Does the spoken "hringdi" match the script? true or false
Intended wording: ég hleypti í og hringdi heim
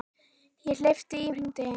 true